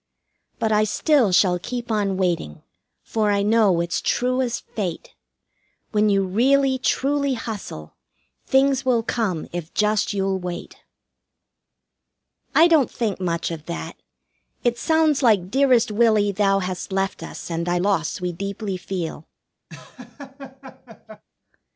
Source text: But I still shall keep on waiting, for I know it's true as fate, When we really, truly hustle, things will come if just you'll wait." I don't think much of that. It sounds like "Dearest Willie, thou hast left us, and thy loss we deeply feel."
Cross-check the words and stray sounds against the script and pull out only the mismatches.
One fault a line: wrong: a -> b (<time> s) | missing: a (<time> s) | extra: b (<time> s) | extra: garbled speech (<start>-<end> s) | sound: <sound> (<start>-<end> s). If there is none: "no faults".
wrong: we -> you (6.1 s)
sound: laugh (19.7-21.2 s)